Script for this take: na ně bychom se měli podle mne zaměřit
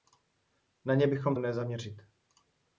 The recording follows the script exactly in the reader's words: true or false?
false